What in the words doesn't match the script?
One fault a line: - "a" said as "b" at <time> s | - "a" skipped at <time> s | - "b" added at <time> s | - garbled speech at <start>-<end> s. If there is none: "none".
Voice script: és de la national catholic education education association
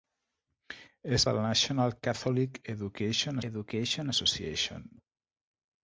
none